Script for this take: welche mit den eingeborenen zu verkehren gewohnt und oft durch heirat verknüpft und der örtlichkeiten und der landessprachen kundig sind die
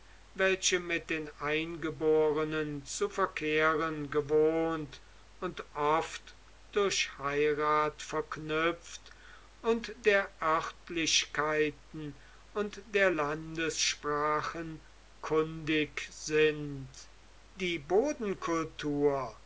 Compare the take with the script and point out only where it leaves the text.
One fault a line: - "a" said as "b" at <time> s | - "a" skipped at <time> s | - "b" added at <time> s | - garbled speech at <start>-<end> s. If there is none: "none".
none